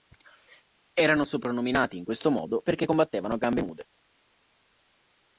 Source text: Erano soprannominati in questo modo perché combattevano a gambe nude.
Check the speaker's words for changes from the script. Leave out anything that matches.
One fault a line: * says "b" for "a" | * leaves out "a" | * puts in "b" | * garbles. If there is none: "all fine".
all fine